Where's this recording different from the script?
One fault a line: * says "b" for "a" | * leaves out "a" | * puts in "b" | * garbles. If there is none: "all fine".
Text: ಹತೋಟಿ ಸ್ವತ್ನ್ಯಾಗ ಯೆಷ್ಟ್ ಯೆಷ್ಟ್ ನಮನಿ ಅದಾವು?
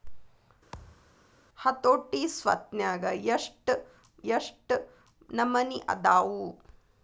all fine